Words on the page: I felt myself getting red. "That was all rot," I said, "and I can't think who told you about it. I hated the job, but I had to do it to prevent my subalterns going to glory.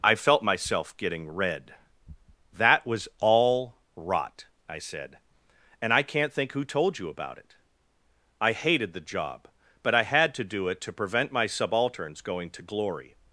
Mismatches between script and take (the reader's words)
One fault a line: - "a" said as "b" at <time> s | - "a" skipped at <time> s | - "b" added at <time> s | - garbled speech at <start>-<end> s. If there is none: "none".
none